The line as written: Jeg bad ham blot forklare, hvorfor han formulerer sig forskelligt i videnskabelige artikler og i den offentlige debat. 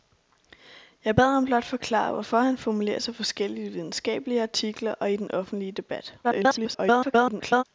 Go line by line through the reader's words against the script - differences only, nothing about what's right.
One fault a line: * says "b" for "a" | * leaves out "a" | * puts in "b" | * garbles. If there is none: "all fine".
* garbles